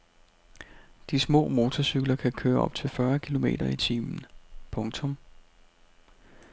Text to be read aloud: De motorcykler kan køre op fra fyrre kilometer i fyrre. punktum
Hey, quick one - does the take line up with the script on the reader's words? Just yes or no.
no